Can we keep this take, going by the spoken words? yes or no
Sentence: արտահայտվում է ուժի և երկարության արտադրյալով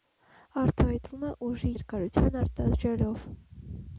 no